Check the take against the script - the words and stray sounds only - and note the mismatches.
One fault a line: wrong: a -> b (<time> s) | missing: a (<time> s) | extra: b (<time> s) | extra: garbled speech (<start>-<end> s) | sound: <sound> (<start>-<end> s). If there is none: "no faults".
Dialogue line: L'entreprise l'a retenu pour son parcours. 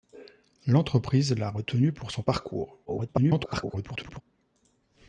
extra: garbled speech (2.9-4.2 s)